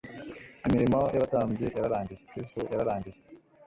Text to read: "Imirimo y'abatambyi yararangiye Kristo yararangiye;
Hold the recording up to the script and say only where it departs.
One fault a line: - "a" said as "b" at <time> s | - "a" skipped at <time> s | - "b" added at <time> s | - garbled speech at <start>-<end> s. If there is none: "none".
none